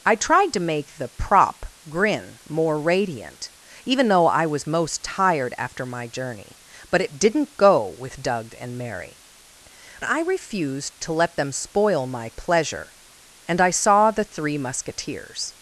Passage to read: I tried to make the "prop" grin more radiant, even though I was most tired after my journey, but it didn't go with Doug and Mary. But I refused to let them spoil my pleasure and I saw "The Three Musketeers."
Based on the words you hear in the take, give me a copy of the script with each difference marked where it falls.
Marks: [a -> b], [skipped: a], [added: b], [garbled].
I tried to make the "prop" grin more radiant, even though I was most tired after my journey, but it didn't go with Doug and Mary. [skipped: But] I refused to let them spoil my pleasure and I saw "The Three Musketeers."